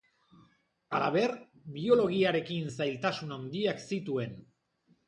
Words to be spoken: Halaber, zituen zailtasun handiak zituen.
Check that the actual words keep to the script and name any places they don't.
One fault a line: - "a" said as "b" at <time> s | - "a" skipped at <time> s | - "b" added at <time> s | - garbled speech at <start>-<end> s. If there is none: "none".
- "zituen" said as "biologiarekin" at 1.8 s